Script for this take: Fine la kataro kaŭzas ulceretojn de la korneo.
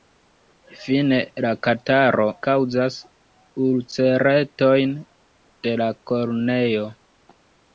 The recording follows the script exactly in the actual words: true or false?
true